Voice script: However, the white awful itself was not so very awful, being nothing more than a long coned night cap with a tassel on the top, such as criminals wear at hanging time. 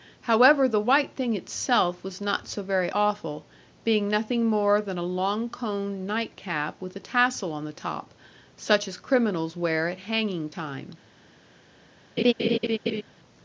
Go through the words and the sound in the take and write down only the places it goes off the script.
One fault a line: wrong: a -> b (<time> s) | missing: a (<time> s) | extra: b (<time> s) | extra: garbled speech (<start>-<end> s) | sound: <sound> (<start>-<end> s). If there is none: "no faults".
wrong: awful -> thing (1.1 s)
sound: laugh (12.2-13.0 s)